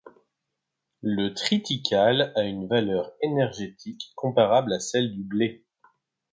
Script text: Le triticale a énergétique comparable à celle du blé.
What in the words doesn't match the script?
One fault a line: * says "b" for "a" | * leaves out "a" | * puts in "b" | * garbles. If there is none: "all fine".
* puts in "une valeur"